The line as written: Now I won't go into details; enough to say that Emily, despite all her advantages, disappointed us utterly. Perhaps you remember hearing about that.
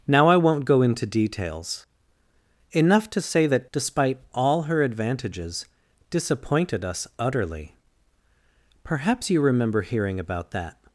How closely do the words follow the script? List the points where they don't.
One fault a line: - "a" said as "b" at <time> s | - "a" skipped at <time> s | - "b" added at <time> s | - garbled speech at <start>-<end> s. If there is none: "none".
- "Emily" skipped at 3.7 s